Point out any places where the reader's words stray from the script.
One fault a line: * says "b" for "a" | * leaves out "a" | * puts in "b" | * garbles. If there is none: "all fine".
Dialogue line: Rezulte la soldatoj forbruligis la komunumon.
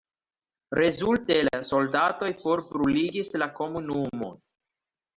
all fine